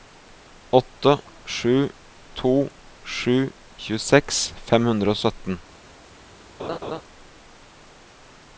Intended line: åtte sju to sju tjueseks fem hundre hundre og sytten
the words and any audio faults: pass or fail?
fail